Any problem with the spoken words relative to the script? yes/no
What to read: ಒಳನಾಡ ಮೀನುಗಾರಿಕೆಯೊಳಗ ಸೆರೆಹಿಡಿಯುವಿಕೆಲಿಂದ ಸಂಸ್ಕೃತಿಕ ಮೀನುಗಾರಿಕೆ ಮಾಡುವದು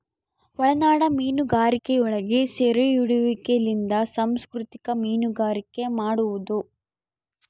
no